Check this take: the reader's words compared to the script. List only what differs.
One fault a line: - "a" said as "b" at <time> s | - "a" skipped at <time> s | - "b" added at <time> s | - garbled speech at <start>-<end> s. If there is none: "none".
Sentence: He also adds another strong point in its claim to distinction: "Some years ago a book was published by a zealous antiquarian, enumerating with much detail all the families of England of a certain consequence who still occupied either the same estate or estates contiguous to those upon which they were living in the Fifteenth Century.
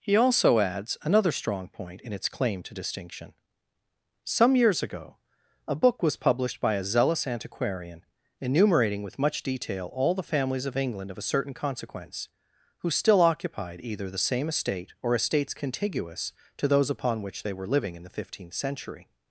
none